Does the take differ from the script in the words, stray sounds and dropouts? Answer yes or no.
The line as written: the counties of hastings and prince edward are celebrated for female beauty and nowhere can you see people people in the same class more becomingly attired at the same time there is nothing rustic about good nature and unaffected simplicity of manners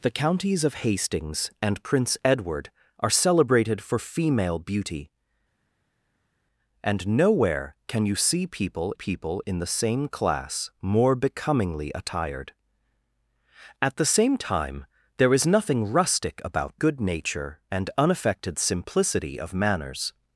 no